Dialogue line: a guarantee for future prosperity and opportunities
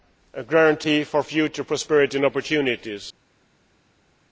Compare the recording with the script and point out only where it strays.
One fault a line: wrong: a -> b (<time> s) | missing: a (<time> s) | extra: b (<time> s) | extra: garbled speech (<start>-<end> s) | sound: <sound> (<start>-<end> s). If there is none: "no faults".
no faults